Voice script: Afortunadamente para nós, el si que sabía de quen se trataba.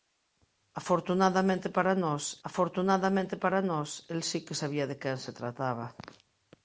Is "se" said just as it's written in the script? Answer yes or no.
yes